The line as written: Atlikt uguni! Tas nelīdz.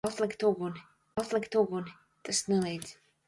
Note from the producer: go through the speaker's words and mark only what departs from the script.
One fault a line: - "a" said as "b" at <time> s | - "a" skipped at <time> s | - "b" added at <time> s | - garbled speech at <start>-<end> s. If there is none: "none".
- "atlikt uguni" added at 1.2 s